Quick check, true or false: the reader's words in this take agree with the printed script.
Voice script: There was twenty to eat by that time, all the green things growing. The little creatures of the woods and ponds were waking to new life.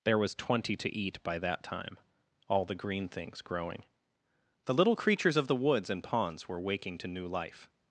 true